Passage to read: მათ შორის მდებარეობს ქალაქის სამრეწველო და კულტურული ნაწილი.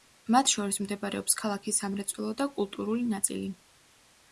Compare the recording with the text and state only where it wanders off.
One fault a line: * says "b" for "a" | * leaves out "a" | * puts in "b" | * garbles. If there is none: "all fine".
all fine